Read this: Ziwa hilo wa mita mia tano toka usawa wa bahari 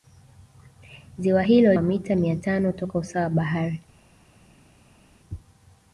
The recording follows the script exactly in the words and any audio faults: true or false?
true